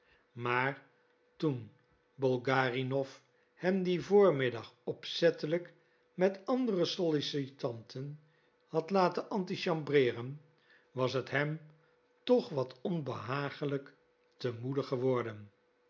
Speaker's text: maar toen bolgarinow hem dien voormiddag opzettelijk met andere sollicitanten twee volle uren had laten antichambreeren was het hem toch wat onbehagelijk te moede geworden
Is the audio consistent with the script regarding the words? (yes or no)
no